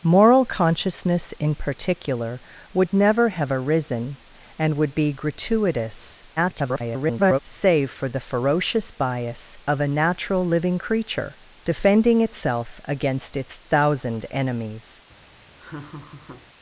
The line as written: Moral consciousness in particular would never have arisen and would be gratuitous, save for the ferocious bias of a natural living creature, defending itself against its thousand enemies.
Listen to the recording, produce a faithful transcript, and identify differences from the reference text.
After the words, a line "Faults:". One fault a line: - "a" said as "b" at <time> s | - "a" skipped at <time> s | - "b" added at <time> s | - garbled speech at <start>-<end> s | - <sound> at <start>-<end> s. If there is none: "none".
Moral consciousness in particular would never have arisen and would be gratuitous, [garbled] save for the ferocious bias of a natural living creature, defending itself against its thousand enemies.
Faults:
- garbled speech at 6.4-7.4 s
- laugh at 15.6-16.5 s